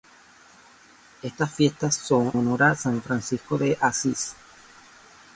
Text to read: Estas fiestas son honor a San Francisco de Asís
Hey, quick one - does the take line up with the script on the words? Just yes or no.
yes